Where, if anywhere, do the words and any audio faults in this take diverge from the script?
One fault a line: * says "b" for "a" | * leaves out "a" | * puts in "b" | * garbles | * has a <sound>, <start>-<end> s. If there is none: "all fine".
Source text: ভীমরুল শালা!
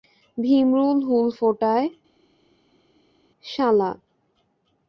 * puts in "হুল ফোটায়"